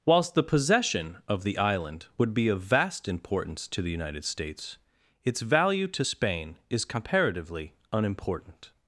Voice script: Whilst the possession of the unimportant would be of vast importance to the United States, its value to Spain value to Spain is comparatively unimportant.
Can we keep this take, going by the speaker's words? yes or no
no